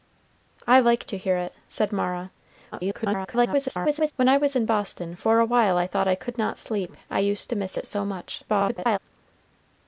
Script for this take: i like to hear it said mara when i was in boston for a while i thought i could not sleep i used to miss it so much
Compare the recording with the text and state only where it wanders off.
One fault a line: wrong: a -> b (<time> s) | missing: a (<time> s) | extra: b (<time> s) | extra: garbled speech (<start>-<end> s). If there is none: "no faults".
extra: garbled speech (2.7-4.1 s)
extra: garbled speech (8.5-9.0 s)